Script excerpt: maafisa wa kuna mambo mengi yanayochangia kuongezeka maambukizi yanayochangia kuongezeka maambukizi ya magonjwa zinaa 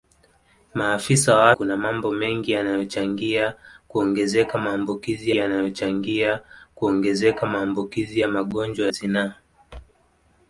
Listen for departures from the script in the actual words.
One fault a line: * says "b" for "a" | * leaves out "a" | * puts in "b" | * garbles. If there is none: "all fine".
all fine